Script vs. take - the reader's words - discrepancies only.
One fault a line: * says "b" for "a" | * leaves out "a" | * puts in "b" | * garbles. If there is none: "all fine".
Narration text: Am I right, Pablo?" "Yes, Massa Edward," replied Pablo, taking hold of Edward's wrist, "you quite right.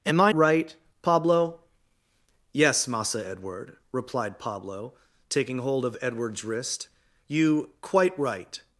all fine